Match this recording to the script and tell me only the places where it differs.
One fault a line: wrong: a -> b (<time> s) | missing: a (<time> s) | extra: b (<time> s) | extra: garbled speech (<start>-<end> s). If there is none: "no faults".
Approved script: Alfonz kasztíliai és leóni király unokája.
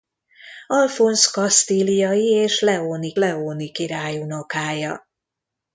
extra: leóni (3.1 s)